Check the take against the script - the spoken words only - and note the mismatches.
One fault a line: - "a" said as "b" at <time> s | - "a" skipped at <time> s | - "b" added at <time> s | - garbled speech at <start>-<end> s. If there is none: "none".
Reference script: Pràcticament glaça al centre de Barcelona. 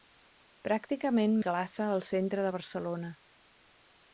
none